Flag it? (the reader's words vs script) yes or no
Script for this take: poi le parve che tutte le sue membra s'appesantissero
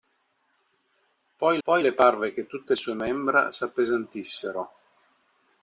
yes